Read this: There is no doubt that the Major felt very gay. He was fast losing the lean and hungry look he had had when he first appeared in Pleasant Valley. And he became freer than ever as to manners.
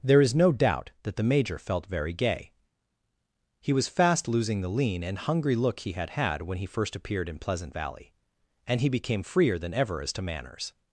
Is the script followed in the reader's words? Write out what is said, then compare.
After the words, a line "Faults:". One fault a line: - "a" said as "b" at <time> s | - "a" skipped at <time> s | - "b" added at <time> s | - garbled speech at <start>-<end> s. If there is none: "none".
There is no doubt that the Major felt very gay. He was fast losing the lean and hungry look he had had when he first appeared in Pleasant Valley. And he became freer than ever as to manners.
Faults:
none